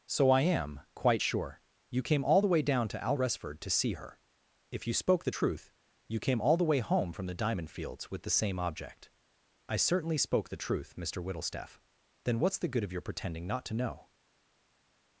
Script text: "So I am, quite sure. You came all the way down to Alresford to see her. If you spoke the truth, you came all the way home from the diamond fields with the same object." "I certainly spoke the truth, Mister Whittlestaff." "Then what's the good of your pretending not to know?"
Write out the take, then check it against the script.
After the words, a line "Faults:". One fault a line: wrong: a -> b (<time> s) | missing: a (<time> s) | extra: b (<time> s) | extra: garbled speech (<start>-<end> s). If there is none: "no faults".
"So I am, quite sure. You came all the way down to Alresford to see her. If you spoke the truth, you came all the way home from the diamond fields with the same object." "I certainly spoke the truth, Mister Whittlestaff." "Then what's the good of your pretending not to know?"
Faults:
no faults